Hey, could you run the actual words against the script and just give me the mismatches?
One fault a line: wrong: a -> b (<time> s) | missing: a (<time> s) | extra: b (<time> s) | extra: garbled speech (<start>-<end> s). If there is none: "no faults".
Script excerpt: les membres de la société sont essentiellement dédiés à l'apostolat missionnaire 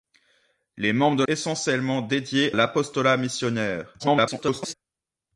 missing: la société sont (1.2 s)
missing: à (2.5 s)
extra: garbled speech (4.0-4.7 s)